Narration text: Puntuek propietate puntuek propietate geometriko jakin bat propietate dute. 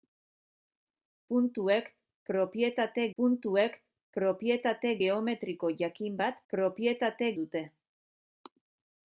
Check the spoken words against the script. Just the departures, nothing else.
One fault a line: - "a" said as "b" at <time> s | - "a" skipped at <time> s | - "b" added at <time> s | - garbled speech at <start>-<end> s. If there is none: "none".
none